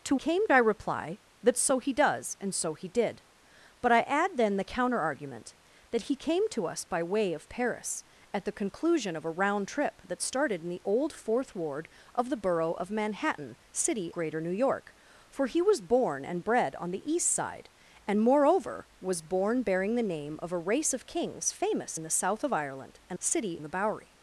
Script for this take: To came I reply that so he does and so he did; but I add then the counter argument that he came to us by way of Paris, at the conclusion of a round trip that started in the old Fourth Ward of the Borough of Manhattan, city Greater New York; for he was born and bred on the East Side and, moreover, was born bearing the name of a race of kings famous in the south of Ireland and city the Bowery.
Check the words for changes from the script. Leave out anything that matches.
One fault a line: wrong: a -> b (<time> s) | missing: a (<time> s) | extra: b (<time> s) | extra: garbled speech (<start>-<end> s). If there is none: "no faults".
no faults